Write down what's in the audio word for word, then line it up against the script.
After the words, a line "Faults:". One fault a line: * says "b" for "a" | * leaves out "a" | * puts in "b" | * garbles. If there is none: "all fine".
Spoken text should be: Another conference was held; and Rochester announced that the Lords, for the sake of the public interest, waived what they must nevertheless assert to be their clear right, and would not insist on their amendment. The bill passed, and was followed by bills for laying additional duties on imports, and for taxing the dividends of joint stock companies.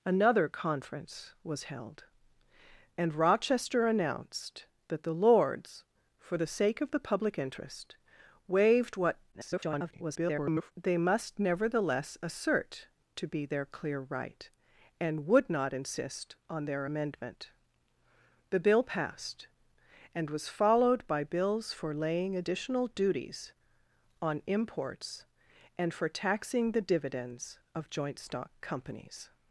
Another conference was held; and Rochester announced that the Lords, for the sake of the public interest, waived what [garbled] they must nevertheless assert to be their clear right, and would not insist on their amendment. The bill passed, and was followed by bills for laying additional duties on imports, and for taxing the dividends of joint stock companies.
Faults:
* garbles